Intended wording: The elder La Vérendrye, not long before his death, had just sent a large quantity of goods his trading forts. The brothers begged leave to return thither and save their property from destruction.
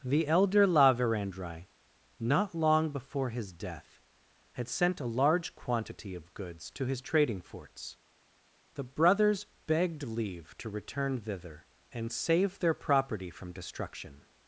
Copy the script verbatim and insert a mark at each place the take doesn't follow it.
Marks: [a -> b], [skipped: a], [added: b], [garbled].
The elder La Vérendrye, not long before his death, had [skipped: just] sent a large quantity of goods [added: to] his trading forts. The brothers begged leave to return thither and save their property from destruction.